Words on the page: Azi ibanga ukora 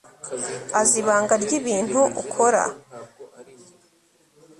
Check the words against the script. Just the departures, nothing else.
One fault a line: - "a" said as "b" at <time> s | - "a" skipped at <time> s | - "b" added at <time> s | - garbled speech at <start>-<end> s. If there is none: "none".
- "ryibintu" added at 1.4 s